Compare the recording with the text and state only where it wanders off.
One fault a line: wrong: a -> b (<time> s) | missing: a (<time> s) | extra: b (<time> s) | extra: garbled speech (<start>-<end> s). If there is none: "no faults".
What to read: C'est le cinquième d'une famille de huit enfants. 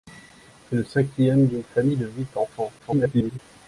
extra: garbled speech (2.8-3.4 s)